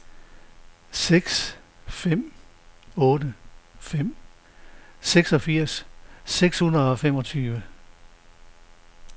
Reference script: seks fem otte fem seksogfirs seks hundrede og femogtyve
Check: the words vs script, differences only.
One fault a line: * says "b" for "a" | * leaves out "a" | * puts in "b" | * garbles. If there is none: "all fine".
all fine